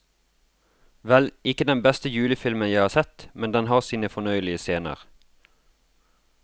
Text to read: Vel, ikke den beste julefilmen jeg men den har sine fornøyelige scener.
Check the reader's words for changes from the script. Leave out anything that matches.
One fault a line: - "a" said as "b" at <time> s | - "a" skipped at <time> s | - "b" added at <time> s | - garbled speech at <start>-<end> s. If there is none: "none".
- "har sett" added at 2.8 s